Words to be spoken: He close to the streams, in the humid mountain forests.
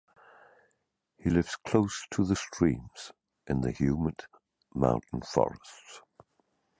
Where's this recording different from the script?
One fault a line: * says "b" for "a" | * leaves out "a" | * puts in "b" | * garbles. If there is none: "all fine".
* puts in "lives"